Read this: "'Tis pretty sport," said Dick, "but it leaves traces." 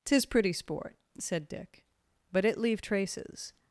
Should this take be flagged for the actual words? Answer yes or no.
yes